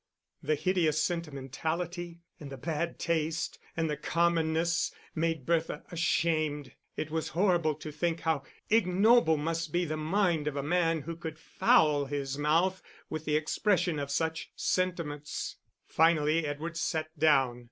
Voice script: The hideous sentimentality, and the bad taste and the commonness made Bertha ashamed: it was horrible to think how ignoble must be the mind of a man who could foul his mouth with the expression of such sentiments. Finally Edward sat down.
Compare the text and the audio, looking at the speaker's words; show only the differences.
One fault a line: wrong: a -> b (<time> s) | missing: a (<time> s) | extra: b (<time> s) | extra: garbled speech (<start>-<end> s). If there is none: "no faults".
no faults